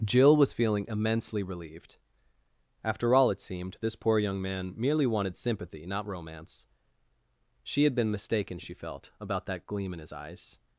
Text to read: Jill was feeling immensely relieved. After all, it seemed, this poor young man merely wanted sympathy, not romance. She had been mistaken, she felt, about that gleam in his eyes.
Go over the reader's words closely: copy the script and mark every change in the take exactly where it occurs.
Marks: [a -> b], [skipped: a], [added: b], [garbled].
Jill was feeling immensely relieved. After all, it seemed, this poor young man merely wanted sympathy, not romance. She had been mistaken, she felt, about that gleam in his eyes.